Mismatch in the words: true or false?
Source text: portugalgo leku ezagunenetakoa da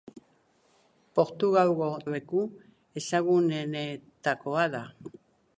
false